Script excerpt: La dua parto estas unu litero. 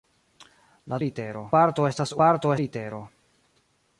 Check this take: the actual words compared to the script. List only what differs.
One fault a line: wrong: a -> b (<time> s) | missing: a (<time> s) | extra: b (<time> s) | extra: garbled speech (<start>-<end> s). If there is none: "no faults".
wrong: dua -> litero (1.0 s)
wrong: unu -> parto (2.2 s)